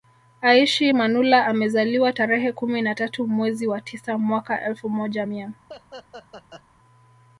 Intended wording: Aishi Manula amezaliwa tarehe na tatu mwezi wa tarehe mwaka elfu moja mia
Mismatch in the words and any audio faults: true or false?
true